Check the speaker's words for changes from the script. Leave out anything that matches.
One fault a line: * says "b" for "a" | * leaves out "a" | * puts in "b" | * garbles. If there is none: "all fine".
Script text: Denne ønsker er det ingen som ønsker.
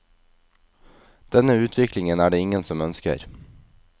* says "utviklingen" for "ønsker"